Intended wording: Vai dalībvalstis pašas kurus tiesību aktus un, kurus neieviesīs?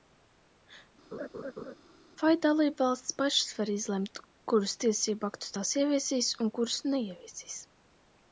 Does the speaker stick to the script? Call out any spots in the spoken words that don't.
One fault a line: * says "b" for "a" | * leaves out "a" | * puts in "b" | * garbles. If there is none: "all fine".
* puts in "var izlemt"
* puts in "tās ieviesīs"